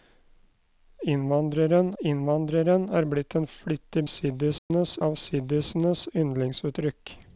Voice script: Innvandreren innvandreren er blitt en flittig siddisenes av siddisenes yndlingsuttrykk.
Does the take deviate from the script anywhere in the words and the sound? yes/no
yes